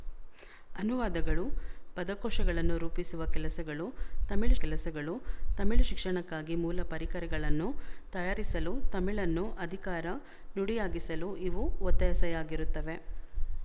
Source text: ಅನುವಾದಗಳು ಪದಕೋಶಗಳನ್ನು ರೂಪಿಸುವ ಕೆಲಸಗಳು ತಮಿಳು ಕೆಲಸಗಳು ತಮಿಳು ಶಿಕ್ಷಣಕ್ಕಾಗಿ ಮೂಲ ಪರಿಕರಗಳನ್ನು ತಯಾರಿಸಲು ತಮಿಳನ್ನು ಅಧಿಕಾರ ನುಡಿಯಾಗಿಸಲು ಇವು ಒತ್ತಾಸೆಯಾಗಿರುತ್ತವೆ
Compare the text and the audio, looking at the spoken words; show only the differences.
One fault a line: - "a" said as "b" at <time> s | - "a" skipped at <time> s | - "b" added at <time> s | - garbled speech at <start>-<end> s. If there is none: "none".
none